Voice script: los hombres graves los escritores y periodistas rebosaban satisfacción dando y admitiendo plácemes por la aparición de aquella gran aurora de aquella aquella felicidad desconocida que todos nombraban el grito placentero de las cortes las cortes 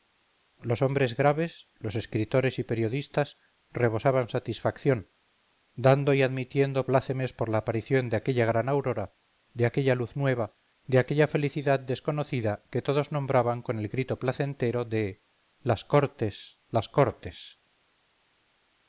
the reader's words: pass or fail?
fail